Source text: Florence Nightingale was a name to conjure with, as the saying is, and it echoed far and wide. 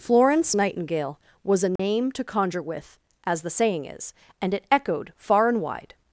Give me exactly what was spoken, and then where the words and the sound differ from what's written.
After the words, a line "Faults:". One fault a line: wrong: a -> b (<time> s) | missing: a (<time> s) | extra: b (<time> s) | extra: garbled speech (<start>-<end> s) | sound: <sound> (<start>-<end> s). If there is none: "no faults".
Florence Nightingale was a name to conjure with, as the saying is, and it echoed far and wide.
Faults:
sound: dropout (1.8-1.8 s)